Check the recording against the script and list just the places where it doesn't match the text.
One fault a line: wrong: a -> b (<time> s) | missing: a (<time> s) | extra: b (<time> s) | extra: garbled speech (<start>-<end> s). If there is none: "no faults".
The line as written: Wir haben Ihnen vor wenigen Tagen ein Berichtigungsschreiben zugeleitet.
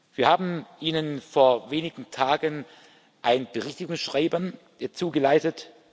no faults